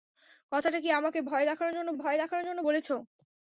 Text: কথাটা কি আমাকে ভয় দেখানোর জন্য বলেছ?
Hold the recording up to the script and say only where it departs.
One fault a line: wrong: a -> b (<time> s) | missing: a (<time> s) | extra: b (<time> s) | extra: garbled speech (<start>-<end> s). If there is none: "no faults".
extra: ভয় দেখানোর জন্য (1.9 s)